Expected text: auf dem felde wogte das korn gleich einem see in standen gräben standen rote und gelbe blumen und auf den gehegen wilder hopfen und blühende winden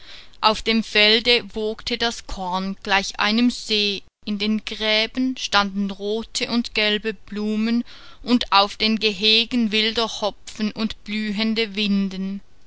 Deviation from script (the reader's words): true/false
true